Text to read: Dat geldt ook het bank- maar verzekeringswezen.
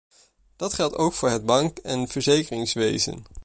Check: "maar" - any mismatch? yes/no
yes